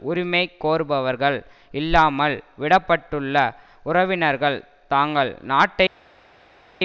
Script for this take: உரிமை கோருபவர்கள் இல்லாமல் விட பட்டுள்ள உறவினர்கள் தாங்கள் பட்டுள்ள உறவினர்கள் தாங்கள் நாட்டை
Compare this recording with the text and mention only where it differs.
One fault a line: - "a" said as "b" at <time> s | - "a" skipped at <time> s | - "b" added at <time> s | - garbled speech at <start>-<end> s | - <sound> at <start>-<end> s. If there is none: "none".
- "பட்டுள்ள உறவினர்கள் தாங்கள்" skipped at 5.3 s